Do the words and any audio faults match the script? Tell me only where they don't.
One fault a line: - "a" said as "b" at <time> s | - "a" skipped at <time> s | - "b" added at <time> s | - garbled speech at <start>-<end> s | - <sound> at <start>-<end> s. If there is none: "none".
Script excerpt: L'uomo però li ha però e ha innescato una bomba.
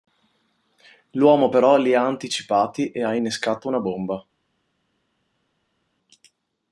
- "però" said as "anticipati" at 2.0 s